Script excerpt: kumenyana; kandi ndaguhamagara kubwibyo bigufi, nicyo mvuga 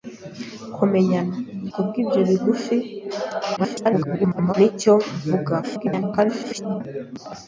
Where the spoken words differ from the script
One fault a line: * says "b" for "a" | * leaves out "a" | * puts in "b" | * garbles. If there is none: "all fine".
* leaves out "kandi ndaguhamagara"
* garbles
* garbles